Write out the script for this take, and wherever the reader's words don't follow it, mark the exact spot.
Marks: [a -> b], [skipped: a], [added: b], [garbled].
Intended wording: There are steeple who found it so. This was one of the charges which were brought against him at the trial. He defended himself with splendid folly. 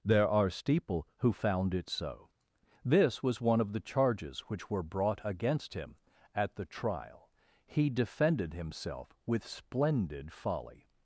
There are steeple who found it so. This was one of the charges which were brought against him at the trial. He defended himself with splendid folly.